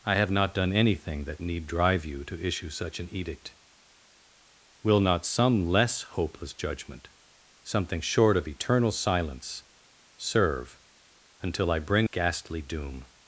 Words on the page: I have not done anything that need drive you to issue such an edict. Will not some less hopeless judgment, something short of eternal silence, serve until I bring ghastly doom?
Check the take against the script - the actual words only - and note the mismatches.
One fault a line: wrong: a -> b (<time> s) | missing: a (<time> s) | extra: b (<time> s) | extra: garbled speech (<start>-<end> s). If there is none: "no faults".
no faults